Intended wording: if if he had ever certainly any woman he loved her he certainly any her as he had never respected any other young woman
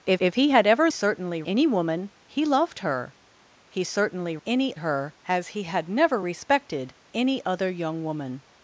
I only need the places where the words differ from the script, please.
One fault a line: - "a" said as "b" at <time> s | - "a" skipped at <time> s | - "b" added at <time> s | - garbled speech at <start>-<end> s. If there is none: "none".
none